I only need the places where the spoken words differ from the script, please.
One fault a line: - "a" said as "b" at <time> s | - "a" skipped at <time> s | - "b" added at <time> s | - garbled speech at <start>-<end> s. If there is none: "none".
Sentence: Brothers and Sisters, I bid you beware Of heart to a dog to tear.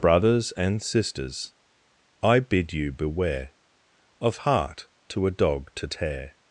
none